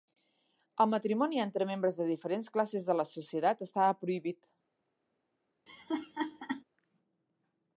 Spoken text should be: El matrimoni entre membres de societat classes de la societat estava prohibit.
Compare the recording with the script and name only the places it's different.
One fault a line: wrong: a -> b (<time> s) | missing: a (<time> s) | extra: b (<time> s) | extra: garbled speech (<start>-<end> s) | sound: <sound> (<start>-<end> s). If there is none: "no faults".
wrong: societat -> diferents (2.1 s)
sound: laugh (5.7-6.6 s)